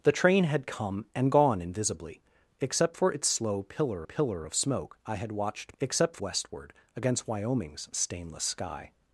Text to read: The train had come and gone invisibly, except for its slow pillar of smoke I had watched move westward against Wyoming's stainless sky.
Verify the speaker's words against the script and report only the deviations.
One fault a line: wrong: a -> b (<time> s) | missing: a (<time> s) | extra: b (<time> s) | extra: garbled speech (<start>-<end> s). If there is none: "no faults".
extra: pillar (4.0 s)
wrong: move -> except (5.8 s)